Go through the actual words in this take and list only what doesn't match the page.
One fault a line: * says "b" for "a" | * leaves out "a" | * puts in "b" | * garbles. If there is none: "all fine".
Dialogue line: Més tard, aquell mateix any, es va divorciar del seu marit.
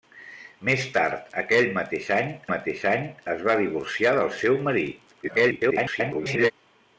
* puts in "mateix any"
* garbles